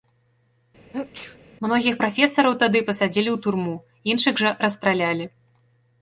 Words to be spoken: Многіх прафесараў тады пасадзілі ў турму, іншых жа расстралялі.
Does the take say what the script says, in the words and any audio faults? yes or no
no